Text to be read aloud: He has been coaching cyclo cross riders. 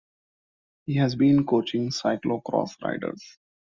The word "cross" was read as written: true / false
true